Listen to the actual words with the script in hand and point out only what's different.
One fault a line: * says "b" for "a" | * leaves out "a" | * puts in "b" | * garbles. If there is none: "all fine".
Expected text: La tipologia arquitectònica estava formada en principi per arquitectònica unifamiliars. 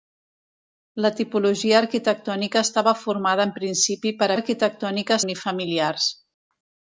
all fine